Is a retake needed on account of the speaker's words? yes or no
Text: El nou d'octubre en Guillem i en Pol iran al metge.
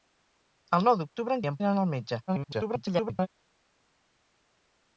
yes